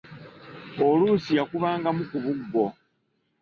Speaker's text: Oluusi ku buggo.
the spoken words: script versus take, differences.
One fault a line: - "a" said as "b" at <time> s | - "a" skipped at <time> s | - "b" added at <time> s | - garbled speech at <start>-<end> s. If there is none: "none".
- "yakubangamu" added at 1.4 s